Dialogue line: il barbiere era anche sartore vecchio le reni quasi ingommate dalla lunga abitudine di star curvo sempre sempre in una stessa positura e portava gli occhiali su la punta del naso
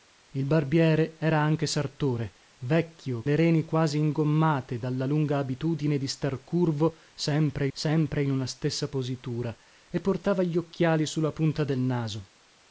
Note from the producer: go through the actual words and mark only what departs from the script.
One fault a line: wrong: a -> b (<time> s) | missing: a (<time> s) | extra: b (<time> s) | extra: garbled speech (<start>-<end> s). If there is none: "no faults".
no faults